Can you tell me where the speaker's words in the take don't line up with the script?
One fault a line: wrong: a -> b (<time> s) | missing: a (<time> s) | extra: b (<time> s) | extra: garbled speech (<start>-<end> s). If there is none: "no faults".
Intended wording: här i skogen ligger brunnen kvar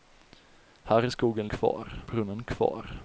wrong: ligger -> kvar (1.4 s)